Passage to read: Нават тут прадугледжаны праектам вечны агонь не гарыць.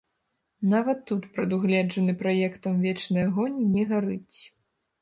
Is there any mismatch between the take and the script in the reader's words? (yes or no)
no